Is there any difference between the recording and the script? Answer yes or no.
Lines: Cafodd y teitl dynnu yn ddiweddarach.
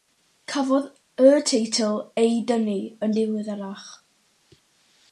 yes